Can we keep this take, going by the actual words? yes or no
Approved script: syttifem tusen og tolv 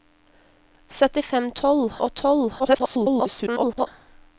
no